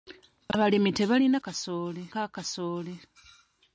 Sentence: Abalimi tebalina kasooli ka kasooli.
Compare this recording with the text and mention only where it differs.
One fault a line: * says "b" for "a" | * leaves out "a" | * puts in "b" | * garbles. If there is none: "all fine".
all fine